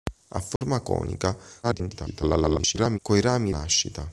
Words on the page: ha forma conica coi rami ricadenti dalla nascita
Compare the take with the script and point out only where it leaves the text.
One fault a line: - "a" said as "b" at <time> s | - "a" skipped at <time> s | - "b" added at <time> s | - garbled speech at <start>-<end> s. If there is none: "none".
- garbled speech at 1.6-3.0 s
- "ricadenti dalla" skipped at 3.5 s